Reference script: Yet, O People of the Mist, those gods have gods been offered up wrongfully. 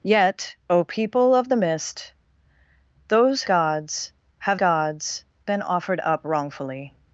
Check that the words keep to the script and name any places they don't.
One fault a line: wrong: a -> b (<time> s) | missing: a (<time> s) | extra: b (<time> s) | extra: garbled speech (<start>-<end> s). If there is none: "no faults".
no faults